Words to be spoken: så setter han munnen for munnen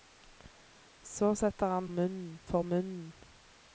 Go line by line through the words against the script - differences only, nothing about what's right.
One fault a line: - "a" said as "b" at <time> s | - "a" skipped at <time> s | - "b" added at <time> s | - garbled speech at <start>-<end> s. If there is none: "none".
none